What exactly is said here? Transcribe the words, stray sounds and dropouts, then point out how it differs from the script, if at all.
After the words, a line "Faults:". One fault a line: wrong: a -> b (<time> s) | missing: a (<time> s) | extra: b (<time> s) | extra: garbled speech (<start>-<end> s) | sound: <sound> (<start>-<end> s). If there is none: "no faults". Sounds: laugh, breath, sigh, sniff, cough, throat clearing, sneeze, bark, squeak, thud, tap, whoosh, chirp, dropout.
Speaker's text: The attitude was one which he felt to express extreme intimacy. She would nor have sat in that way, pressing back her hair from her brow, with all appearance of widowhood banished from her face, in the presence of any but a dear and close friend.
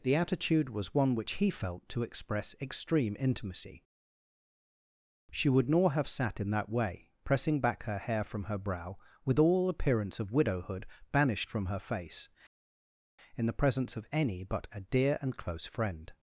The attitude was one which he felt to express extreme intimacy. She would nor have sat in that way, pressing back her hair from her brow, with all appearance of widowhood banished from her face, in the presence of any but a dear and close friend.
Faults:
no faults